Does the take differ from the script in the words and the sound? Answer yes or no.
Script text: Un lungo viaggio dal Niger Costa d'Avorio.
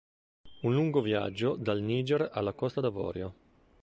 yes